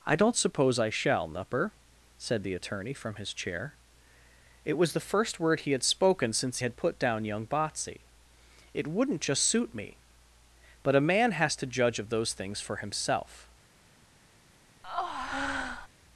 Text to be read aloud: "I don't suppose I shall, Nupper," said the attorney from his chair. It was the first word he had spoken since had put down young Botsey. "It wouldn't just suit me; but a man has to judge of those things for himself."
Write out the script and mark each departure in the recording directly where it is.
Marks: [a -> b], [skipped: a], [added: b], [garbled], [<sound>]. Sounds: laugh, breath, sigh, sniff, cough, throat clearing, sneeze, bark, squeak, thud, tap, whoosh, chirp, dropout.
"I don't suppose I shall, Nupper," said the attorney from his chair. It was the first word he had spoken since had put down young Botsey. "It wouldn't just suit me; but a man has to judge of those things for himself." [breath]